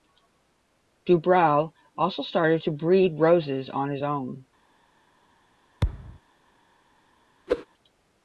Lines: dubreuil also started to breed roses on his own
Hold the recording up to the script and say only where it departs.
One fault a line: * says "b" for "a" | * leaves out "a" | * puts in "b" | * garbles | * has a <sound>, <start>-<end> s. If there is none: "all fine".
* has a thud, 5.8-6.2 s
* has a whoosh, 7.5-7.7 s